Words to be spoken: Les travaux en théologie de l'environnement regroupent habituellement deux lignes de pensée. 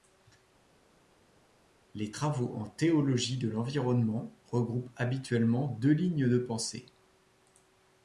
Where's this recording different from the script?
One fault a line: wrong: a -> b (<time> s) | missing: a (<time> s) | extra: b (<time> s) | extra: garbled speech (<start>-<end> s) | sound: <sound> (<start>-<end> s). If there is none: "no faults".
no faults